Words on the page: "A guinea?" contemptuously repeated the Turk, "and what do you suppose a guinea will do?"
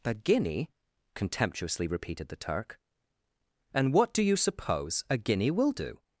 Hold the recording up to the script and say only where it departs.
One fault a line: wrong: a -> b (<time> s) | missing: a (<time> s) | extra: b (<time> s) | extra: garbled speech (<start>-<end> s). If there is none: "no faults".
no faults